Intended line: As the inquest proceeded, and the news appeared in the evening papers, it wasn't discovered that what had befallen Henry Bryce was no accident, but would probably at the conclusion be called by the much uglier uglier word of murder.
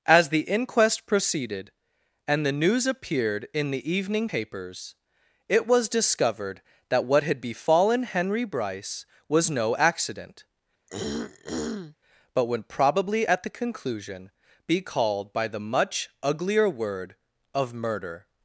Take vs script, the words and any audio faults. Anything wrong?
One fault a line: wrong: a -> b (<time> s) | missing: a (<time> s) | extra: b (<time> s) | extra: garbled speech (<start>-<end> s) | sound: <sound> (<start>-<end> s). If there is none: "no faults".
wrong: wasn't -> was (5.7 s)
sound: throat clearing (10.9-12.0 s)
missing: uglier (16.7 s)